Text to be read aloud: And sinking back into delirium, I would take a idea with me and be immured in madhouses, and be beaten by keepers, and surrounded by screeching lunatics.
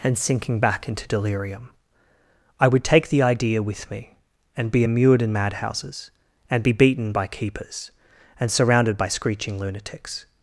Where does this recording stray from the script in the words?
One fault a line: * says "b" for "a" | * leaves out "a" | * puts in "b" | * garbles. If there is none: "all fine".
* says "the" for "a"